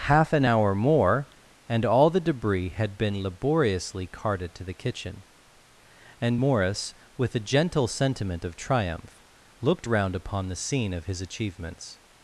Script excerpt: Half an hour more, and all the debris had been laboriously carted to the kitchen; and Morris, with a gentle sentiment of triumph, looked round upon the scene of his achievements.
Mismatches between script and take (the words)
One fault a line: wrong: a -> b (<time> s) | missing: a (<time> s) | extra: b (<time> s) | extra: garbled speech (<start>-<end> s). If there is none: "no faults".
no faults